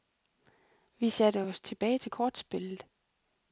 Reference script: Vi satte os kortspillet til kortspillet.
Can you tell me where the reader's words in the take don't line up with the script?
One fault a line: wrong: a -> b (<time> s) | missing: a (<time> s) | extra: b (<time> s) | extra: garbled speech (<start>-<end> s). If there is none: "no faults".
wrong: kortspillet -> tilbage (1.6 s)